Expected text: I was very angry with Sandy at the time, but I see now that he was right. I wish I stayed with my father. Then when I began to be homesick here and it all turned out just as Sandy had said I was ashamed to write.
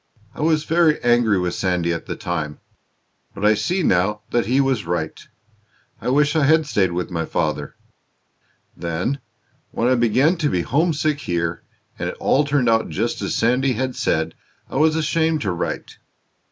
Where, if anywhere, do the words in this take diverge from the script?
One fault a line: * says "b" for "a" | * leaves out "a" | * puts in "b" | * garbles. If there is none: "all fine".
* puts in "had"